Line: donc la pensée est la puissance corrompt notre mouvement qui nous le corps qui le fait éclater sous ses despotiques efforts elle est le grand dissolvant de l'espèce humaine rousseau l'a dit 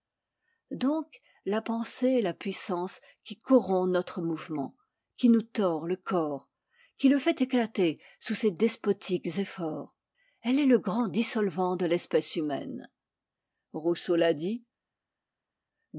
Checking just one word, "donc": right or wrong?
right